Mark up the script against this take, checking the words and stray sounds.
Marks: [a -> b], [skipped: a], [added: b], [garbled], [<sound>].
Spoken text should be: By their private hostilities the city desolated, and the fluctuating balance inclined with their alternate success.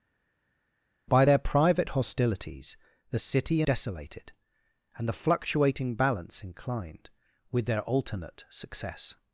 By their private hostilities the city desolated, and the fluctuating balance inclined with their alternate success.